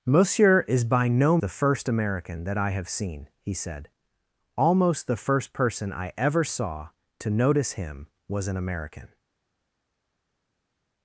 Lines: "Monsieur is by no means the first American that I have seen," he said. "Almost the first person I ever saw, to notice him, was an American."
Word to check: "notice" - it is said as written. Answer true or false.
true